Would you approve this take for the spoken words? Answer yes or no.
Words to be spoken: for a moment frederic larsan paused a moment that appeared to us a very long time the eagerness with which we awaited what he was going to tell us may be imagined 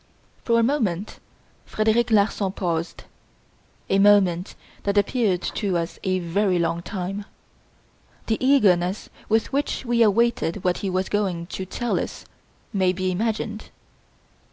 yes